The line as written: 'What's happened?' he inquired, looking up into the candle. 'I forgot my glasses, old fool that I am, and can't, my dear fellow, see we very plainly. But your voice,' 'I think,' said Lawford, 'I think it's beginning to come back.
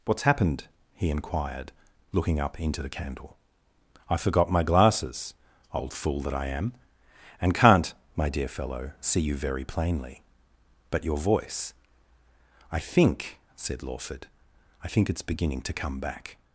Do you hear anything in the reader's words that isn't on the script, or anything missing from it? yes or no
yes